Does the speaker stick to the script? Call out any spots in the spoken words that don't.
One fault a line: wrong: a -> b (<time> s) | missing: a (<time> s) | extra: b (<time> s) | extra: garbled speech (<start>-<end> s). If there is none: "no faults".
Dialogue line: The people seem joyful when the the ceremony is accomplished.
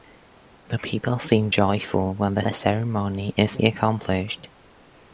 no faults